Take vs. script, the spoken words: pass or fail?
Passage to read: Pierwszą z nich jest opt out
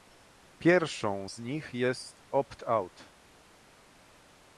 pass